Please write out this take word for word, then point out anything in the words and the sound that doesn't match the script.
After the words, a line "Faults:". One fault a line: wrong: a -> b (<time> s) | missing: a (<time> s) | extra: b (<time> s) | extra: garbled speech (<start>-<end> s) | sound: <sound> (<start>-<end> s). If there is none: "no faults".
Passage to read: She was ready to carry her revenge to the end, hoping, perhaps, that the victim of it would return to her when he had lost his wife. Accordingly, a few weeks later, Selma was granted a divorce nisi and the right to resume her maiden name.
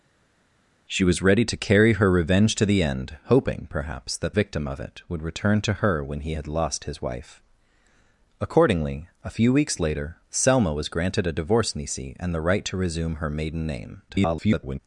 She was ready to carry her revenge to the end, hoping, perhaps, that victim of it would return to her when he had lost his wife. Accordingly, a few weeks later, Selma was granted a divorce nisi and the right to resume her maiden name. [garbled]
Faults:
missing: the (4.4 s)
extra: garbled speech (14.1-14.8 s)